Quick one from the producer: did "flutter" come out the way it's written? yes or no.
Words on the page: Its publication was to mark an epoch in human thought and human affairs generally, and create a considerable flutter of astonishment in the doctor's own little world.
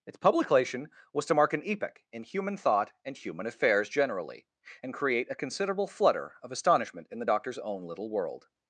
yes